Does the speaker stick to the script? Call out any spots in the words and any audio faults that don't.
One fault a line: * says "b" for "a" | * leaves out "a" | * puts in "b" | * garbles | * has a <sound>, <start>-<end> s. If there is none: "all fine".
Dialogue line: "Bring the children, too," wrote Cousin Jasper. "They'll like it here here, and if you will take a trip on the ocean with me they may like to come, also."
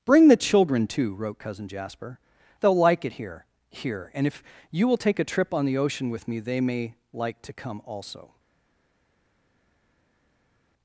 all fine